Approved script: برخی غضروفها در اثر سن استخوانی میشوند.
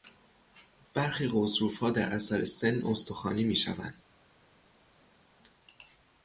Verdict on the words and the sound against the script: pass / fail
pass